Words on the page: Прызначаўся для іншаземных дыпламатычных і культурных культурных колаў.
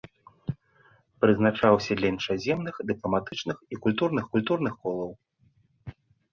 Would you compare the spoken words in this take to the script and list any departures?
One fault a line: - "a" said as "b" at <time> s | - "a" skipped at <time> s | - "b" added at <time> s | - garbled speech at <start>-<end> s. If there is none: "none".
none